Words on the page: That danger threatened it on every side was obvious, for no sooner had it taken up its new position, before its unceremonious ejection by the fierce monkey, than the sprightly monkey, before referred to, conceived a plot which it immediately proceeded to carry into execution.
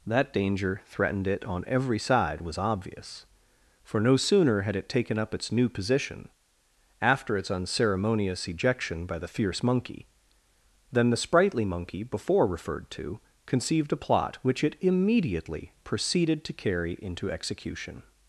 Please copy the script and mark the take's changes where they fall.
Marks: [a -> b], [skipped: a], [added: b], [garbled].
That danger threatened it on every side was obvious, for no sooner had it taken up its new position, [before -> after] its unceremonious ejection by the fierce monkey, than the sprightly monkey, before referred to, conceived a plot which it immediately proceeded to carry into execution.